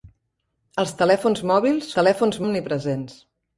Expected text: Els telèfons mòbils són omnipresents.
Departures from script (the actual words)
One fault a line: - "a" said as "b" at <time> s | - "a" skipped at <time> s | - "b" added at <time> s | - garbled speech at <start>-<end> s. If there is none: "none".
- "són" said as "telèfons" at 2.0 s